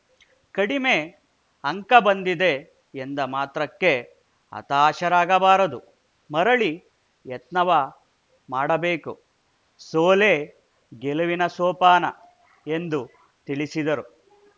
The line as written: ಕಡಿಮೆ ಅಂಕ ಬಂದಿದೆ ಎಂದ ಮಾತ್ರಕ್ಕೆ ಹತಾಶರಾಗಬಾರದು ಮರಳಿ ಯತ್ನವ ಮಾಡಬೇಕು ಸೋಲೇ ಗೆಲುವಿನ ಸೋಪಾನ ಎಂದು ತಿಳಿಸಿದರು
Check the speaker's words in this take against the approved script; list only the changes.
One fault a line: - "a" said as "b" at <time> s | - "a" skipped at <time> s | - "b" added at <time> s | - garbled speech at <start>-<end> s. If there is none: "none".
none